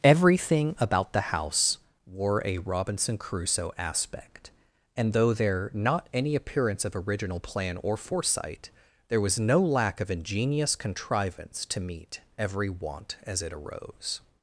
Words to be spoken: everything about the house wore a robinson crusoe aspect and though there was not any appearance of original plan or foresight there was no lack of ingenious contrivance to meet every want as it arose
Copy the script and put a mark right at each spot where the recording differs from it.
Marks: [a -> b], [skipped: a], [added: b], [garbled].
everything about the house wore a robinson crusoe aspect and though there [skipped: was] not any appearance of original plan or foresight there was no lack of ingenious contrivance to meet every want as it arose